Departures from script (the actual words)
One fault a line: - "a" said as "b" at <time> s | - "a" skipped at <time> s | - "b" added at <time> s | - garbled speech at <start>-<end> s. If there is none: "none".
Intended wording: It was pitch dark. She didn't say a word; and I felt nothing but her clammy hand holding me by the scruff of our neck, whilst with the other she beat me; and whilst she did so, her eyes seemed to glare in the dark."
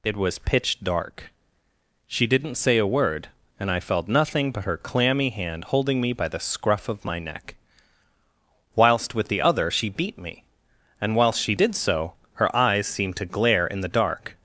- "our" said as "my" at 7.0 s